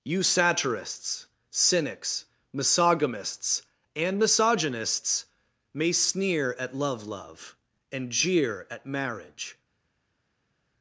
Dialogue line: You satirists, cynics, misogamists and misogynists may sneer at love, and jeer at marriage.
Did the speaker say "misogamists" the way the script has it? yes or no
yes